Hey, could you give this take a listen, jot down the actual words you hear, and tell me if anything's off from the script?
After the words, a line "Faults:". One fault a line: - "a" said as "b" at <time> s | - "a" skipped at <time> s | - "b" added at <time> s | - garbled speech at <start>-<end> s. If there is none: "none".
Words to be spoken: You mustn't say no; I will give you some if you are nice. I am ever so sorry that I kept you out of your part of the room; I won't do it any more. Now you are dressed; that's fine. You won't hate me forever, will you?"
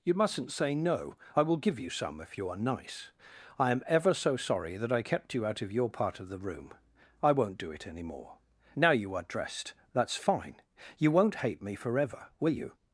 You mustn't say no; I will give you some if you are nice. I am ever so sorry that I kept you out of your part of the room; I won't do it any more. Now you are dressed; that's fine. You won't hate me forever, will you?"
Faults:
none